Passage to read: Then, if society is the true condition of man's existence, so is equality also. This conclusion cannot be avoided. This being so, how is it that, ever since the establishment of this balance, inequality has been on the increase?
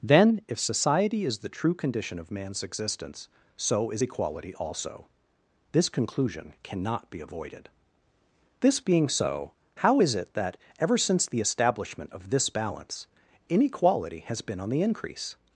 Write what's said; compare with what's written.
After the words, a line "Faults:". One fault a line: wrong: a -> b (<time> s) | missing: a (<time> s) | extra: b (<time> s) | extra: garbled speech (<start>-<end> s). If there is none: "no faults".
Then, if society is the true condition of man's existence, so is equality also. This conclusion cannot be avoided. This being so, how is it that, ever since the establishment of this balance, inequality has been on the increase?
Faults:
no faults